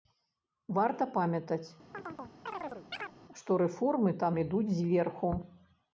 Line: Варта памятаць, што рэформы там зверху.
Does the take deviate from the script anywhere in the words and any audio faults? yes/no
yes